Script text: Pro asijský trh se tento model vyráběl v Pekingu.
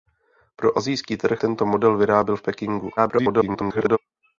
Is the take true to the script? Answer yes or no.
no